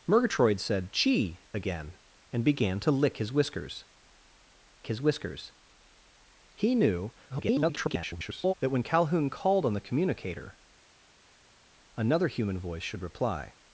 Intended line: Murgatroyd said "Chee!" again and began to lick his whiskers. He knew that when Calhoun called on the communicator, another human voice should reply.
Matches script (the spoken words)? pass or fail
fail